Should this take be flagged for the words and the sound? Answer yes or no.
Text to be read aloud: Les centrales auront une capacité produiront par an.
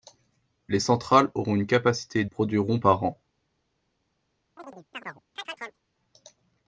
yes